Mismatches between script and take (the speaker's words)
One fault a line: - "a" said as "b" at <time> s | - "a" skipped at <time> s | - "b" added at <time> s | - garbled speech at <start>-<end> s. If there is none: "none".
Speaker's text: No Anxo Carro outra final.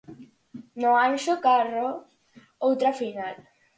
none